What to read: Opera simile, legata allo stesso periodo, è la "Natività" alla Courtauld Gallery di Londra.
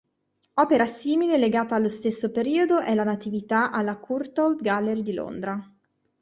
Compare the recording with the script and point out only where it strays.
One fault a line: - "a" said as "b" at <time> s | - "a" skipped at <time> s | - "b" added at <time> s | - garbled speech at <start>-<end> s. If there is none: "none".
none